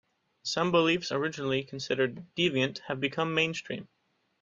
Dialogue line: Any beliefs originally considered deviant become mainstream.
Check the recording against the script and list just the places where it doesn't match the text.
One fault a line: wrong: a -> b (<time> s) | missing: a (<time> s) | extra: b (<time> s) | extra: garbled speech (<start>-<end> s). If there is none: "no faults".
wrong: Any -> Some (0.4 s)
extra: have (2.9 s)